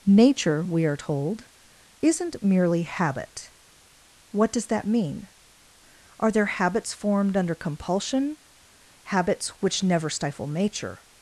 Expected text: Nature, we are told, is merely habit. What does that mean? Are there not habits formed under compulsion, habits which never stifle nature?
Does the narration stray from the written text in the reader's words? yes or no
yes